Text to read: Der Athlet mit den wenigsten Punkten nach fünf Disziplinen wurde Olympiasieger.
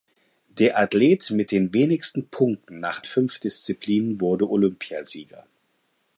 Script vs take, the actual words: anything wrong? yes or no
no